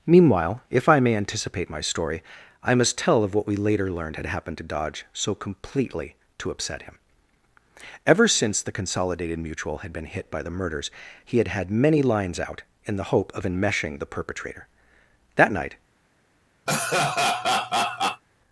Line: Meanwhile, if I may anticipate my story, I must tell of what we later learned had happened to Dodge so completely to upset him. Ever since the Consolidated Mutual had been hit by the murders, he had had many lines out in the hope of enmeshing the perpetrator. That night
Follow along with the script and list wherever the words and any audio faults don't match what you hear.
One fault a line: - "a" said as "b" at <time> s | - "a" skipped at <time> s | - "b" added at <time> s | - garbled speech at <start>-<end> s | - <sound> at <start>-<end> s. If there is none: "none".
- laugh at 16.7-18.2 s